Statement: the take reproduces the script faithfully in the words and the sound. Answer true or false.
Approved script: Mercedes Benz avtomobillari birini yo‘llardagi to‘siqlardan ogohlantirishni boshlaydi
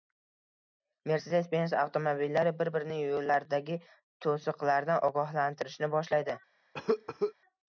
false